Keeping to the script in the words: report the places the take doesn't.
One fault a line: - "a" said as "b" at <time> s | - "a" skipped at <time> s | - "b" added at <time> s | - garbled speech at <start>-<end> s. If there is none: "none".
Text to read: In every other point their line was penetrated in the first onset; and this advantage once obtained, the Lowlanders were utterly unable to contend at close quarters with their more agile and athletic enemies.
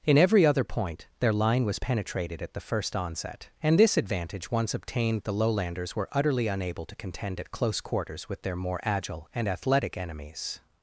- "in" said as "at" at 2.4 s